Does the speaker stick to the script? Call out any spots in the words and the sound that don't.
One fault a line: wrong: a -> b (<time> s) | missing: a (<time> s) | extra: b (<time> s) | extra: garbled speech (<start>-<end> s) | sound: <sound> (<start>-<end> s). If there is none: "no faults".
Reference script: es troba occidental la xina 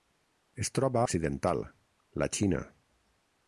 no faults